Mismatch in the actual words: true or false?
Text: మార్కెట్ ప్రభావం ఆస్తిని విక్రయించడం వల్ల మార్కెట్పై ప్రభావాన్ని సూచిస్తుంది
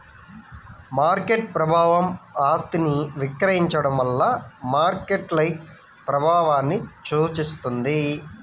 false